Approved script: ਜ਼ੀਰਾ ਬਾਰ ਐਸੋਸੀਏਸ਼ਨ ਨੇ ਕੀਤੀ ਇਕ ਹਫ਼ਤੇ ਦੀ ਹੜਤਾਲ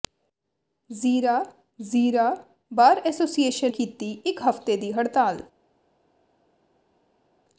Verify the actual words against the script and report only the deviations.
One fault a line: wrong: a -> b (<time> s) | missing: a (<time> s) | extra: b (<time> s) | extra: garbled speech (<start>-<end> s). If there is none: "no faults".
extra: ਜ਼ੀਰਾ (1.8 s)
missing: ਨੇ (3.7 s)